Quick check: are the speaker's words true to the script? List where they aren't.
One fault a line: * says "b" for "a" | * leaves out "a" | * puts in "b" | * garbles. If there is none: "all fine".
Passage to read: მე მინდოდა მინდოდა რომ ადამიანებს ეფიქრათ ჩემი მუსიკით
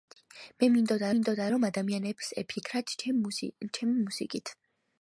all fine